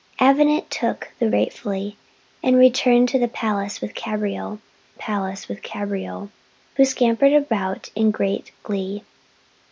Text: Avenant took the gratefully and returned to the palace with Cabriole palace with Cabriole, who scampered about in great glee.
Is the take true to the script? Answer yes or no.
yes